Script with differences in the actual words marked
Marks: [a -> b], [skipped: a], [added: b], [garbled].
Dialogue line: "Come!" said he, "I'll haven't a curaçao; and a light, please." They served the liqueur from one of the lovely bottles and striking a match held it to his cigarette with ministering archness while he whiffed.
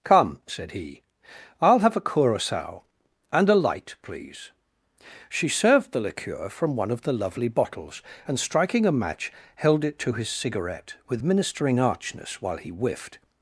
"Come!" said he, "I'll [haven't -> have] a curaçao; and a light, please." [They -> She] served the liqueur from one of the lovely bottles and striking a match held it to his cigarette with ministering archness while he whiffed.